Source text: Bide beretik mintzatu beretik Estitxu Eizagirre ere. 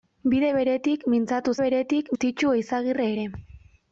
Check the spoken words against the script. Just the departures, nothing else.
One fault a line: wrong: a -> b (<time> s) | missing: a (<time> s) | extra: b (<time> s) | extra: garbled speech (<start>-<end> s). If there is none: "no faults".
no faults